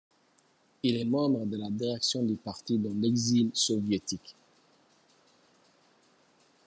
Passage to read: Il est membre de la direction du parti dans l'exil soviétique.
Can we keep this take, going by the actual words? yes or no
yes